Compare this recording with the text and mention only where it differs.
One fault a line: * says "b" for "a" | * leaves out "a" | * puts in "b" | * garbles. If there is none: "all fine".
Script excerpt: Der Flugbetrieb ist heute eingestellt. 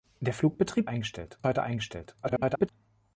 * says "eingestellt" for "ist"
* garbles